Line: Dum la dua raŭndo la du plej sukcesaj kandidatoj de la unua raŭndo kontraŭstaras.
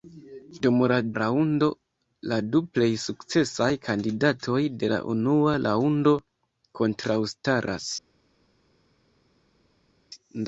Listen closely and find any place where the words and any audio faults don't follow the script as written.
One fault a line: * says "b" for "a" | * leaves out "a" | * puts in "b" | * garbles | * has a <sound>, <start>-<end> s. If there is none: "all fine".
* leaves out "dua"